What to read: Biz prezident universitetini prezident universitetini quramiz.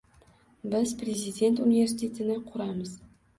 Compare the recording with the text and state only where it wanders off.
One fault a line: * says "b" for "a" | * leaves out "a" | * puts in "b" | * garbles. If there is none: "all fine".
* leaves out "prezident universitetini"